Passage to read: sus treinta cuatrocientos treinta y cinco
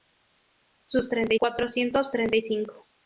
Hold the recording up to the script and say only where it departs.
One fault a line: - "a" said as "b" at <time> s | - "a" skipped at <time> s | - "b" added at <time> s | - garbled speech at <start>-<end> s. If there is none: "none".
none